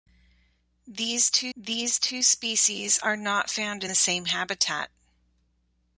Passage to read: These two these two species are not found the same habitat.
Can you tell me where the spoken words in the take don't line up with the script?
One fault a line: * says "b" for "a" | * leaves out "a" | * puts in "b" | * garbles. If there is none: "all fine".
all fine